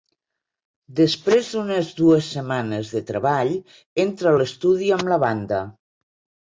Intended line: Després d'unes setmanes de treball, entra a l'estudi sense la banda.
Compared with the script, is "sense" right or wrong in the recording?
wrong